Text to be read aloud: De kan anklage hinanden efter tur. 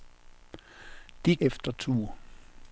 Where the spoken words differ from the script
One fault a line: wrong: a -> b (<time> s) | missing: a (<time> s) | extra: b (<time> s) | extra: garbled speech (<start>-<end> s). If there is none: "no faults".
missing: kan anklage hinanden (1.4 s)